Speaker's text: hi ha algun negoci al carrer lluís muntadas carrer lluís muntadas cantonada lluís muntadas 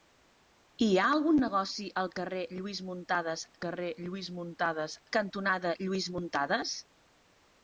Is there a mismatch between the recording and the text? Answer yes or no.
no